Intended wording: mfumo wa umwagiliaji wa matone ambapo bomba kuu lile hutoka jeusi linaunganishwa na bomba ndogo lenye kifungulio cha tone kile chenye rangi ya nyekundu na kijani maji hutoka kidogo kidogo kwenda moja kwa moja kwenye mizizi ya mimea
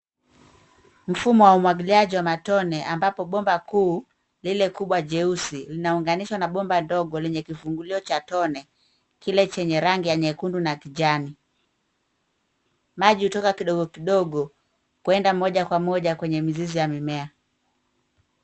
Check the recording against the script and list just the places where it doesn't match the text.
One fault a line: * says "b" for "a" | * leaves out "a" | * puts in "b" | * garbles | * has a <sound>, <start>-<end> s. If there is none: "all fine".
* says "kubwa" for "hutoka"